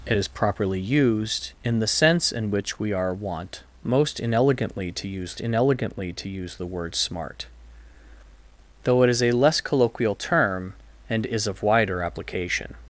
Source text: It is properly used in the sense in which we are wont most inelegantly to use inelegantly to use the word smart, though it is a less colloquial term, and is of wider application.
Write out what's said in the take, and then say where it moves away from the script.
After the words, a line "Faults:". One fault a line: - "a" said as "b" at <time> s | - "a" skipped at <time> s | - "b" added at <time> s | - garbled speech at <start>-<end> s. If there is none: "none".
It is properly used in the sense in which we are wont most inelegantly to use inelegantly to use the word smart, though it is a less colloquial term, and is of wider application.
Faults:
none